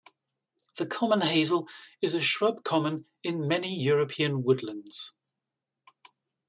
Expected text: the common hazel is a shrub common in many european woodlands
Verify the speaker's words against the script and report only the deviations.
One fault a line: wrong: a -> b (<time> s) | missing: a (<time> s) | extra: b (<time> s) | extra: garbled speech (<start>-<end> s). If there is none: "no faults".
no faults